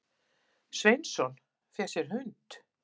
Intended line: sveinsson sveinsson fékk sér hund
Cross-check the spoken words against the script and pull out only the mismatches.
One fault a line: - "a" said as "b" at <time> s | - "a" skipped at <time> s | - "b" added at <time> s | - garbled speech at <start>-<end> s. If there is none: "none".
- "sveinsson" skipped at 1.3 s